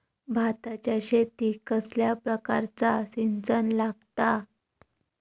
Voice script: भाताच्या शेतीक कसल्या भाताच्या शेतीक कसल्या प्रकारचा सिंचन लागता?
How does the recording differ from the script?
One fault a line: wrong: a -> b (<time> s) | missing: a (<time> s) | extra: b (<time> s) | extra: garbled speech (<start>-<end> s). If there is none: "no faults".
missing: भाताच्या शेतीक कसल्या (2.1 s)